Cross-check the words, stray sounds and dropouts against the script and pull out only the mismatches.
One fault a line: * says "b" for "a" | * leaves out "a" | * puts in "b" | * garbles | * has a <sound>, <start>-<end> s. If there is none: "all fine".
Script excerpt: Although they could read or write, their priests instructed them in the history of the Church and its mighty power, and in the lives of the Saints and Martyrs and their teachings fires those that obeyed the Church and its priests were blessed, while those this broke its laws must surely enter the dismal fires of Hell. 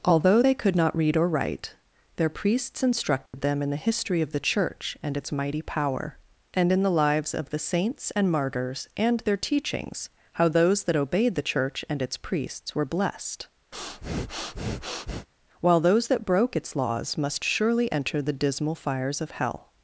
* puts in "not"
* has a dropout, 3.3-3.3 s
* says "how" for "fires"
* has a breath, 13.7-15.3 s
* says "that" for "this"